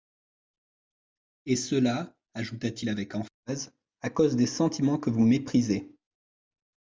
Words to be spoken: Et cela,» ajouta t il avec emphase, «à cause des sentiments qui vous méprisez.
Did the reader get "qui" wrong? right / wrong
wrong